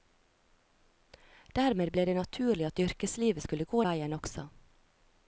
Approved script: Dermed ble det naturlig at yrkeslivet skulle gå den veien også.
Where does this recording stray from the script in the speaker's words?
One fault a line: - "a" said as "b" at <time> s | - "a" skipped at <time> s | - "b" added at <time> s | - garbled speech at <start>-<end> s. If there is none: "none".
- "den" skipped at 3.8 s